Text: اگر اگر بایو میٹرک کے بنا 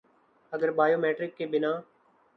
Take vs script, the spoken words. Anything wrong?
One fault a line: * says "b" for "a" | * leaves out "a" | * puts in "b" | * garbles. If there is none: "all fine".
* leaves out "اگر"